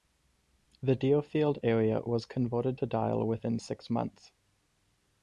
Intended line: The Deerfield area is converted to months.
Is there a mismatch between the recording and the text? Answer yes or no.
yes